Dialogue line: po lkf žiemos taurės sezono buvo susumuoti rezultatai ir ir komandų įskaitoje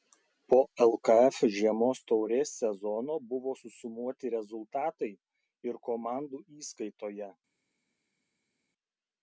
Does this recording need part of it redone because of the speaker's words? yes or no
yes